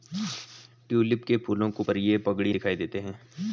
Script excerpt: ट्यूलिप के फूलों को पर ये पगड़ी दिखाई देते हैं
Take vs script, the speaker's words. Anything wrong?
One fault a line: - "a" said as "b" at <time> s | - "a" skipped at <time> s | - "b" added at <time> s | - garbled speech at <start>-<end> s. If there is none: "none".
none